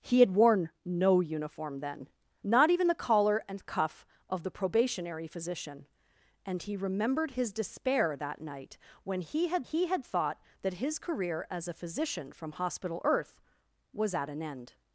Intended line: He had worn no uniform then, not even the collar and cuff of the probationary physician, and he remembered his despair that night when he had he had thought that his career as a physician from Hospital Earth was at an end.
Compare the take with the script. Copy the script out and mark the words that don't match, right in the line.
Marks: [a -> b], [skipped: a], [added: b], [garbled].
He had worn no uniform then, not even the collar and cuff of the probationary physician, and he remembered his despair that night when he had he had thought that his career as a physician from Hospital Earth was at an end.